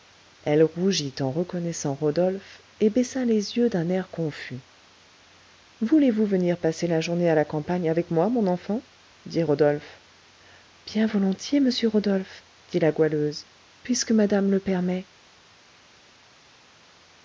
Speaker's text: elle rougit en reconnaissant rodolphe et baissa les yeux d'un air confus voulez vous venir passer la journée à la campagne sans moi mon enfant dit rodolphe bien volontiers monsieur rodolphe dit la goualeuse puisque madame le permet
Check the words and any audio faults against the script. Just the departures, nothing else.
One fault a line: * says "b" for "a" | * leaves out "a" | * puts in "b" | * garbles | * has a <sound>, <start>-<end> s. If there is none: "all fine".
* says "avec" for "sans"